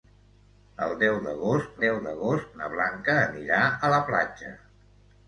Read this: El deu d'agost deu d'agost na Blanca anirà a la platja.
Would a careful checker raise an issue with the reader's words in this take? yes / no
no